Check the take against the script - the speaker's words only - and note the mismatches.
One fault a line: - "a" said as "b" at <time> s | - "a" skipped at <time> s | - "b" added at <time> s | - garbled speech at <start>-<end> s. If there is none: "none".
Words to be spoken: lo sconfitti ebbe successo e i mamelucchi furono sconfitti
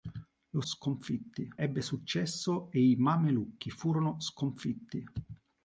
none